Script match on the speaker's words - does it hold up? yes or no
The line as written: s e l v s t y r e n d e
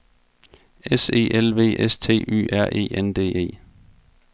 yes